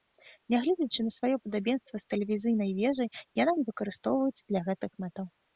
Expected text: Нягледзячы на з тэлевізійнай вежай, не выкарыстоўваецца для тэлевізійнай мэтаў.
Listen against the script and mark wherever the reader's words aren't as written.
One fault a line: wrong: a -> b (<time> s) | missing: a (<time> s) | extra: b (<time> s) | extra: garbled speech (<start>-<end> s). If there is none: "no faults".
extra: сваё падабенства (1.2 s)
extra: яна (3.4 s)
wrong: тэлевізійнай -> гэтых (4.7 s)